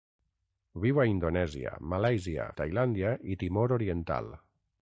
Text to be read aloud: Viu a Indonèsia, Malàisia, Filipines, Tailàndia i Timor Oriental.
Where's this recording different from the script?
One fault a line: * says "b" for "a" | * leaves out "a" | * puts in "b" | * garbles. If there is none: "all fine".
* leaves out "Filipines"